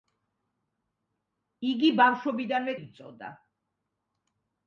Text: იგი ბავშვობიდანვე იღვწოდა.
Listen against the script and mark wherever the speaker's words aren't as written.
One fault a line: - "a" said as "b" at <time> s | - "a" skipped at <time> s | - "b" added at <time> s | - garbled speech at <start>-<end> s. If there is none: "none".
none